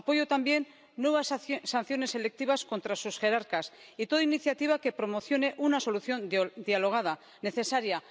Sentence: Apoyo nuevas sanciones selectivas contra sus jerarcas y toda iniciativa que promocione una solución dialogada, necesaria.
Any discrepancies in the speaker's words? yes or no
yes